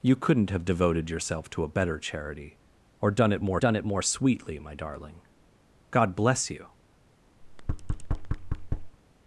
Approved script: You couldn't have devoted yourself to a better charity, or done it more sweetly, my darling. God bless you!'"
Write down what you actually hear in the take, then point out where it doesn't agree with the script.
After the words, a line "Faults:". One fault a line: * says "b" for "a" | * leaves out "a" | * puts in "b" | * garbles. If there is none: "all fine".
You couldn't have devoted yourself to a better charity, or done it more done it more sweetly, my darling. God bless you!'"
Faults:
* puts in "done it more"